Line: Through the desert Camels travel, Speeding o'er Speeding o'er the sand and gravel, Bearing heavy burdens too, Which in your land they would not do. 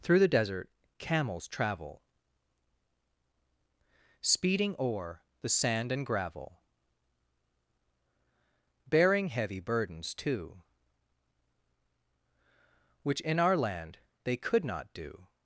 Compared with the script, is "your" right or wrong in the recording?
wrong